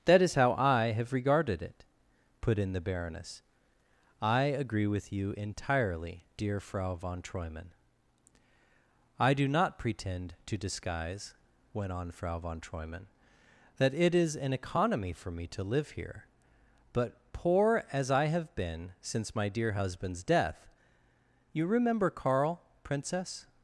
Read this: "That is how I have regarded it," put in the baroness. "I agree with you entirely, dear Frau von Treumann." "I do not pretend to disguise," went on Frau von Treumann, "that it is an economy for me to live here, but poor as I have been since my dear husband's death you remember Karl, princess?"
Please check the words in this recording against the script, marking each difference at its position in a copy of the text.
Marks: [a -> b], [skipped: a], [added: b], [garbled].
"That is how I have regarded it," put in the baroness. "I agree with you entirely, dear Frau von Treumann." "I do not pretend to disguise," went on Frau von Treumann, "that it is an economy for me to live here, but poor as I have been since my dear husband's death you remember Karl, princess?"